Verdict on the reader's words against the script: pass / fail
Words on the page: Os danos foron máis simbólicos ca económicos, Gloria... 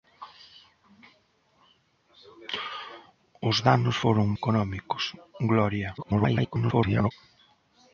fail